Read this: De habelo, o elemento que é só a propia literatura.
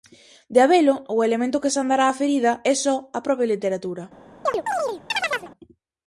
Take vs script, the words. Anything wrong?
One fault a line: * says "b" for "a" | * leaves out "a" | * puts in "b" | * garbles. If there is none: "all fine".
* puts in "sandará a ferida"